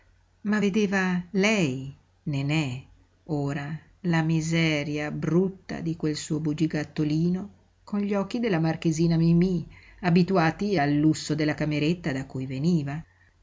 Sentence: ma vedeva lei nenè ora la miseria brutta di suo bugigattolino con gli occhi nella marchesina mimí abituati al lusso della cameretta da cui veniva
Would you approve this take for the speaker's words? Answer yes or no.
no